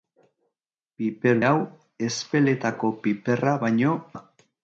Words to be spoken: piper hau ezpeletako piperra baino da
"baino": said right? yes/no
yes